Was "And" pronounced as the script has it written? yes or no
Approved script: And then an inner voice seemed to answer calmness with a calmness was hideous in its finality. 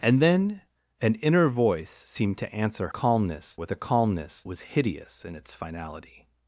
yes